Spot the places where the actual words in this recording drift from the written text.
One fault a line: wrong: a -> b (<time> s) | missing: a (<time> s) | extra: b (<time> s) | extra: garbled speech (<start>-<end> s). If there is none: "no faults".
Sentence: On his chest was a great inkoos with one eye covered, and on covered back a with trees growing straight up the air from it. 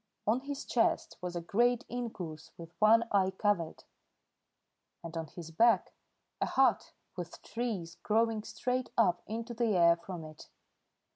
wrong: covered -> his (5.3 s)
extra: hut (6.5 s)
extra: into (9.3 s)